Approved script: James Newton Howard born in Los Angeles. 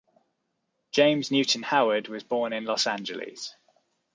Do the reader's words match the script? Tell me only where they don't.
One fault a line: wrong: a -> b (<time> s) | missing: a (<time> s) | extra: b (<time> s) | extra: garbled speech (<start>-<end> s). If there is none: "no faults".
extra: was (2.1 s)